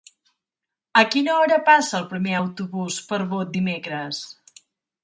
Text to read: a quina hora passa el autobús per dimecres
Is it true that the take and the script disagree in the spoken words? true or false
true